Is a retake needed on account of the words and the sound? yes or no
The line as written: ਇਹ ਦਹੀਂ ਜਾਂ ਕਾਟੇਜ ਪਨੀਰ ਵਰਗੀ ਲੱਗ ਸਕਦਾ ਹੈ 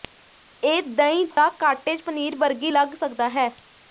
yes